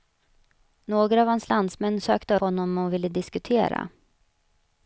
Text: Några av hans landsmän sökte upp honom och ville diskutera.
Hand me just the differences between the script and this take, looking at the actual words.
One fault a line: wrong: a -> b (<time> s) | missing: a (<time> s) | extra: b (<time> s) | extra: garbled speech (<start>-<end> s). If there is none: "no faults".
missing: upp (2.4 s)